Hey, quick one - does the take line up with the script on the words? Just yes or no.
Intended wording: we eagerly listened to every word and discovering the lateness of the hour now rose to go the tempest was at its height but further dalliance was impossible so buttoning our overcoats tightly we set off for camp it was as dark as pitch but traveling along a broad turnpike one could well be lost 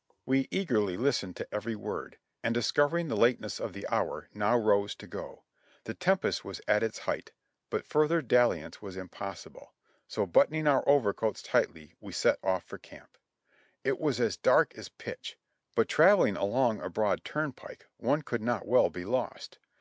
no